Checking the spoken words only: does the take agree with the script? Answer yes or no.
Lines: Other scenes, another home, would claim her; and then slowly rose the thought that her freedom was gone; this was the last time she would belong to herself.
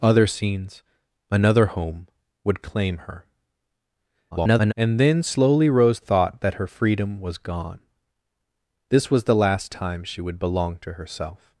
no